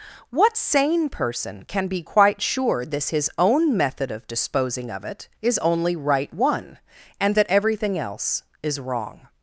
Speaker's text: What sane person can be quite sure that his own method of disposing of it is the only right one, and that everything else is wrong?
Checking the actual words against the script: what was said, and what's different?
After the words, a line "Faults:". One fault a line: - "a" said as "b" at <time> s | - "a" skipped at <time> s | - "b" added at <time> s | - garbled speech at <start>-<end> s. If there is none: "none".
What sane person can be quite sure this his own method of disposing of it is only right one, and that everything else is wrong?
Faults:
- "that" said as "this" at 2.9 s
- "the" skipped at 5.6 s